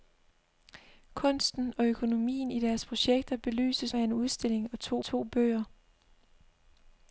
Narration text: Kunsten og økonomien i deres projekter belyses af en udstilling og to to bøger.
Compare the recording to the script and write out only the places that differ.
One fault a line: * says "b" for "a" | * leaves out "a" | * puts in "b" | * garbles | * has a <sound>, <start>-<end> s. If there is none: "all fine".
all fine